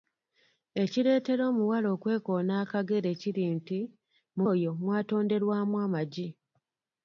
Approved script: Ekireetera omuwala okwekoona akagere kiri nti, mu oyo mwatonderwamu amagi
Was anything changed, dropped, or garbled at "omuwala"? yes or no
no